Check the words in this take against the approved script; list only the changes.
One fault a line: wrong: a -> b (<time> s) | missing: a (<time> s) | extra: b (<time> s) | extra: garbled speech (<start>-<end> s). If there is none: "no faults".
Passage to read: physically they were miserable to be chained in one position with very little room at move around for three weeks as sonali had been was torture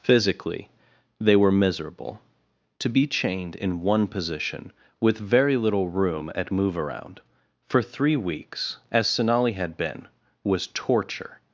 no faults